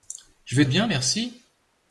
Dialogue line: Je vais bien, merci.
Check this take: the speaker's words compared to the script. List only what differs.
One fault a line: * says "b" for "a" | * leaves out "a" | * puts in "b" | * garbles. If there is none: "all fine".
all fine